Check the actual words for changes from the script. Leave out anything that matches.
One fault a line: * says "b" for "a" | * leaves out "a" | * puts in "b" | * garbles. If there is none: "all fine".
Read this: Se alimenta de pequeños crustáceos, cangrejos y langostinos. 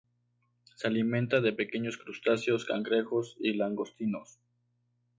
all fine